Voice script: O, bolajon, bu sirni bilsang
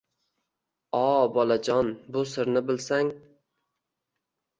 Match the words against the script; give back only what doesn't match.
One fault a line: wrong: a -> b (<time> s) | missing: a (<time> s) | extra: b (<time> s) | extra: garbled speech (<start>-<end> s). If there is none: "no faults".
no faults